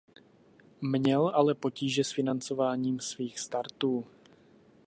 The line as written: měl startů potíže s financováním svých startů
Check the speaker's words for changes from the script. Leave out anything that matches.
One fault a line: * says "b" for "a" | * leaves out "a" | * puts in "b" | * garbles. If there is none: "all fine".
* says "ale" for "startů"